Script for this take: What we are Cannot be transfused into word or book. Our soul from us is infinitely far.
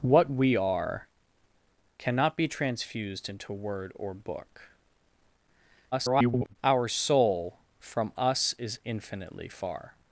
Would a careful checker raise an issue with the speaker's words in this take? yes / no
yes